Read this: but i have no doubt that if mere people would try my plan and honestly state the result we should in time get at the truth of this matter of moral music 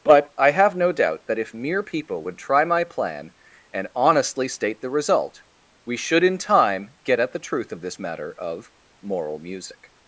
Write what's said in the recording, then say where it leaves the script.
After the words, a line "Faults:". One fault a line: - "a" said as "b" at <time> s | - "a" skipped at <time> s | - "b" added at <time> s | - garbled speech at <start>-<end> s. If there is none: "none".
but i have no doubt that if mere people would try my plan and honestly state the result we should in time get at the truth of this matter of moral music
Faults:
none